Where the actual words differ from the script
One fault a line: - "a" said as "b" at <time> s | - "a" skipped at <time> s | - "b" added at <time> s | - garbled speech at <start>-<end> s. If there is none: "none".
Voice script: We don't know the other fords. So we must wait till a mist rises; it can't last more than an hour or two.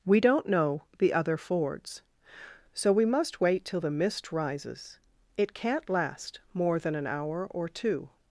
- "a" said as "the" at 3.8 s